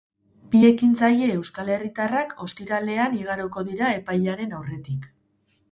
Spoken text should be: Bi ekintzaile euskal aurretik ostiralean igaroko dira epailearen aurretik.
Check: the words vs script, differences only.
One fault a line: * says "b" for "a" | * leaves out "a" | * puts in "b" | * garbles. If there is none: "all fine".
* says "herritarrak" for "aurretik"